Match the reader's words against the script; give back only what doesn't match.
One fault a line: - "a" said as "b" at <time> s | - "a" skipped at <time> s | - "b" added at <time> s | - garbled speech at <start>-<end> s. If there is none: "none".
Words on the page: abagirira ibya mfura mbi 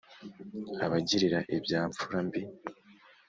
none